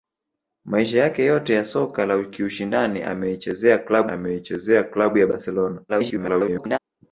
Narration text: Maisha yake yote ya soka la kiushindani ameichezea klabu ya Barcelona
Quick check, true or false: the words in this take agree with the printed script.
false